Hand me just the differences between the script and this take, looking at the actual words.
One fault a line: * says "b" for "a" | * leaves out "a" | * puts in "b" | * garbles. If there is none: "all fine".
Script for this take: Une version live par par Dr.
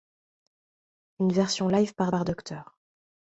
all fine